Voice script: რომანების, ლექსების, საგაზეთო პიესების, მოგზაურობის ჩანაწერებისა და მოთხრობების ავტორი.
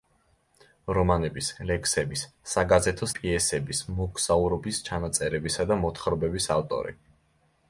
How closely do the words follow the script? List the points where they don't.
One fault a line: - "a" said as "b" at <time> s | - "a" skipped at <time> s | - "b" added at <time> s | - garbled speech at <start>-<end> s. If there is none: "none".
none